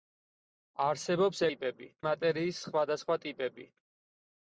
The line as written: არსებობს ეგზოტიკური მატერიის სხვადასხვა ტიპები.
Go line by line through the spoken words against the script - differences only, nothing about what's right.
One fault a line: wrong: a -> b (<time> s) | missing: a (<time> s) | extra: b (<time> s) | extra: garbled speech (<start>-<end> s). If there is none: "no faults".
wrong: ეგზოტიკური -> ტიპები (1.5 s)